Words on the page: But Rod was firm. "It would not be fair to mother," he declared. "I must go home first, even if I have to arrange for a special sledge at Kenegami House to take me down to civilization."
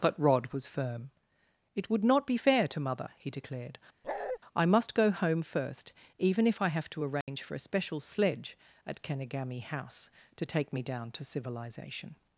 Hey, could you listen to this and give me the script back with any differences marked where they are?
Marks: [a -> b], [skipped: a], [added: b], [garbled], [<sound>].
But Rod was firm. "It would not be fair to mother," he declared. [bark] "I must go home first, even if I have to arrange [dropout] for a special sledge at Kenegami House to take me down to civilization."